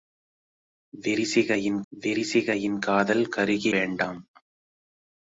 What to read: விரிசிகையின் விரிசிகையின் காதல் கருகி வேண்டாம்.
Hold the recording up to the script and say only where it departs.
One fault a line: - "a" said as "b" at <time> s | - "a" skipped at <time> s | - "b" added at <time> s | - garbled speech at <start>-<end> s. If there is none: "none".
none